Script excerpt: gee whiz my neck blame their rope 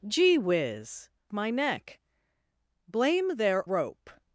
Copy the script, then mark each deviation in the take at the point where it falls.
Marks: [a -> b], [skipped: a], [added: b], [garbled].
gee whiz my neck blame their rope